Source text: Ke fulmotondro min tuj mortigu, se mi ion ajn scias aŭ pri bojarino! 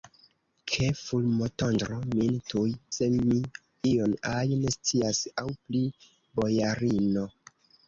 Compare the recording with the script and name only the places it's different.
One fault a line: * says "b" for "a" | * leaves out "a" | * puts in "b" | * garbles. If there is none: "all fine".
* leaves out "mortigu"